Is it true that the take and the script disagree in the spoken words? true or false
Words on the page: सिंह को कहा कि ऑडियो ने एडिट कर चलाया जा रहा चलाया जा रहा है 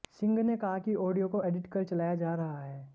true